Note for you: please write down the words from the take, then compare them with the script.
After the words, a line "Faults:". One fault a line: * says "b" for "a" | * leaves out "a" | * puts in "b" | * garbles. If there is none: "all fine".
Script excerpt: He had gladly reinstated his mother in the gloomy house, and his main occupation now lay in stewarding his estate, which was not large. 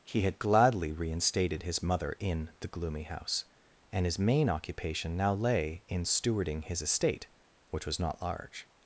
He had gladly reinstated his mother in the gloomy house, and his main occupation now lay in stewarding his estate, which was not large.
Faults:
all fine